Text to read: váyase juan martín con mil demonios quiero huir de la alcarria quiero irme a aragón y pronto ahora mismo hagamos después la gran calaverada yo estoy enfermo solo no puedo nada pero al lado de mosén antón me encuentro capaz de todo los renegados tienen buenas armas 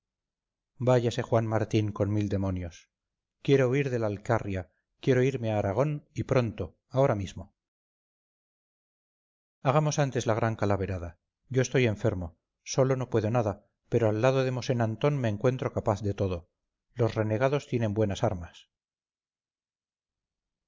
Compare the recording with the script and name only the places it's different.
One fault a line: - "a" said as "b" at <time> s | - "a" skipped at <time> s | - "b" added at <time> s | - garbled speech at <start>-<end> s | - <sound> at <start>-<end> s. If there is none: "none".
- "después" said as "antes" at 10.0 s